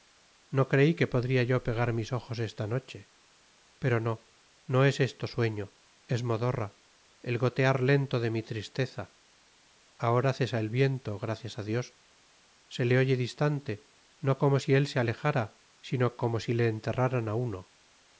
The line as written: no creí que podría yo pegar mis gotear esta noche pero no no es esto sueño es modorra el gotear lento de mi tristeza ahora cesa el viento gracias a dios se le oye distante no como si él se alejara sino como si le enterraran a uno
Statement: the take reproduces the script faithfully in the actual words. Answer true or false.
false